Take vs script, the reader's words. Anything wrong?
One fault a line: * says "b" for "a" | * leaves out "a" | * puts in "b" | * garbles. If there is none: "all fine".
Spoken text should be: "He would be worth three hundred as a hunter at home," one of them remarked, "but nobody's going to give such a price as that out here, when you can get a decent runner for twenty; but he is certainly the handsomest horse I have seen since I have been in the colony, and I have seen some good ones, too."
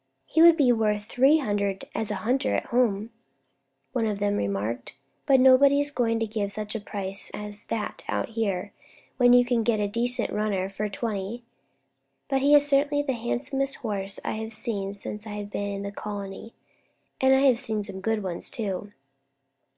all fine